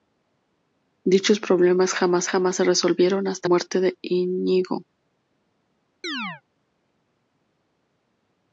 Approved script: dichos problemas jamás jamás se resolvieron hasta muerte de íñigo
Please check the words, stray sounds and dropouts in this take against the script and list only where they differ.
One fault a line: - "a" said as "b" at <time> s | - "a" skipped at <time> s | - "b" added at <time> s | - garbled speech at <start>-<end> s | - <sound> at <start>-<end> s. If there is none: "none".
- chirp at 6.0-6.4 s